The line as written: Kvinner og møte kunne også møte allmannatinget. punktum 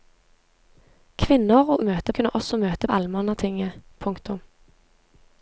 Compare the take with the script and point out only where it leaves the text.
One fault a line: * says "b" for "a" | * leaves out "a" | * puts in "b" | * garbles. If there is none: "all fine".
all fine